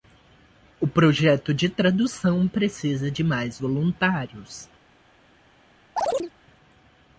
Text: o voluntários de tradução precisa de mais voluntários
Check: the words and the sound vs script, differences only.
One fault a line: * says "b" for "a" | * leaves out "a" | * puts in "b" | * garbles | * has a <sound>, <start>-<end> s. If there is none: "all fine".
* says "projeto" for "voluntários"
* has a chirp, 6.0-6.3 s